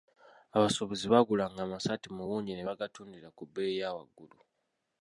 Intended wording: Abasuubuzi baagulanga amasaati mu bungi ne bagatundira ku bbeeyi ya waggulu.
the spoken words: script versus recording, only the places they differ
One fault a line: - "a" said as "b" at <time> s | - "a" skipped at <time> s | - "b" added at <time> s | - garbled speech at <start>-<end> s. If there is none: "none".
none